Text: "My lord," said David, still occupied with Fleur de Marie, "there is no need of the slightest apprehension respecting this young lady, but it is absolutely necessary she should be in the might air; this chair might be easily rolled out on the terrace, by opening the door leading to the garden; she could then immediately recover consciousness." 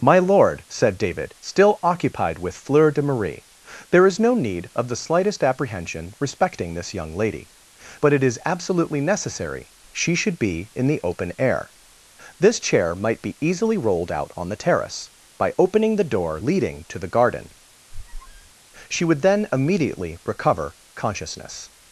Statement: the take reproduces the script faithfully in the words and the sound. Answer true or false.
false